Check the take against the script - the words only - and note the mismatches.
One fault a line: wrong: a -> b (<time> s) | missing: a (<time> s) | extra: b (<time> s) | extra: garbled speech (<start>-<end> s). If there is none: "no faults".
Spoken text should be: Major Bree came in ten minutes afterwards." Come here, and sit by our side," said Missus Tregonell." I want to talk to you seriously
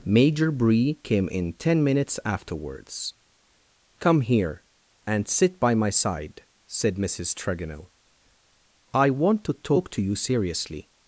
wrong: our -> my (5.7 s)